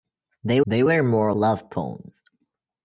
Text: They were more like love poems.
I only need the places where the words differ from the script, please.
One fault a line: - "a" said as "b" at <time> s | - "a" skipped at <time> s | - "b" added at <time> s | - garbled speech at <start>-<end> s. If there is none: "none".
- "they" added at 0.6 s
- "like" skipped at 1.3 s